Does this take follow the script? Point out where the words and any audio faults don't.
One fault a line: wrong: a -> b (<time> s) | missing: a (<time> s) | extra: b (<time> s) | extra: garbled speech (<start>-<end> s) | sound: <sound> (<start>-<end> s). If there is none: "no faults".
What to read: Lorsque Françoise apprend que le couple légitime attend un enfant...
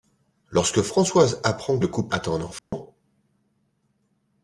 missing: que (1.8 s)
missing: légitime (2.1 s)
sound: dropout (2.6-2.7 s)